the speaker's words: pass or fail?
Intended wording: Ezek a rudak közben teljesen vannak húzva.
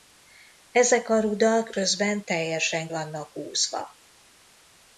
pass